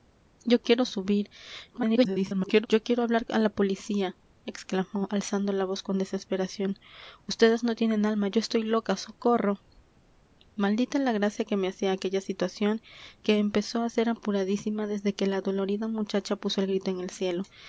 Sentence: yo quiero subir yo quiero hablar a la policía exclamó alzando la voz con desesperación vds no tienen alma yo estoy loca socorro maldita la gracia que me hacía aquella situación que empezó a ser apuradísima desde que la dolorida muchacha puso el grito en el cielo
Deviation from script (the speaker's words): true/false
true